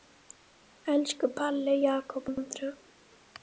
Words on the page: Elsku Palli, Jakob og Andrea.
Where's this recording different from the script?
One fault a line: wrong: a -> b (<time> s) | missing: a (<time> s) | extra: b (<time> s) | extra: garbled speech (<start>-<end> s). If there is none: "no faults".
missing: og (2.3 s)